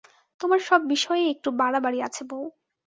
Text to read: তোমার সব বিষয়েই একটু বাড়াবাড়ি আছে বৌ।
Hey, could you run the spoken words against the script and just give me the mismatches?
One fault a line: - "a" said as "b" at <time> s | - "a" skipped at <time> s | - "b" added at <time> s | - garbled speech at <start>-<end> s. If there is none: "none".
none